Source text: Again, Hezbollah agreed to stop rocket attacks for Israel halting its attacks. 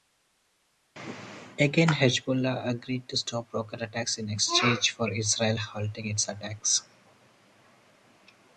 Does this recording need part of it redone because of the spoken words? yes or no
yes